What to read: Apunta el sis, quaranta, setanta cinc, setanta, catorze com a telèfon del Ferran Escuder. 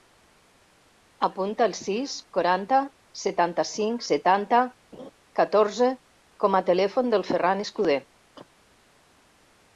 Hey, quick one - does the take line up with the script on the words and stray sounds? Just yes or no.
no